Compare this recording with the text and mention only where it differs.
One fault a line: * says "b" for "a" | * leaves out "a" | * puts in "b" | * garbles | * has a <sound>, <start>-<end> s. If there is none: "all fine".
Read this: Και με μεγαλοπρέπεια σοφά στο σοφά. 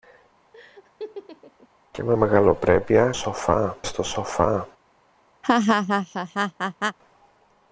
* has a laugh, 0.5-1.7 s
* has a laugh, 5.4-7.0 s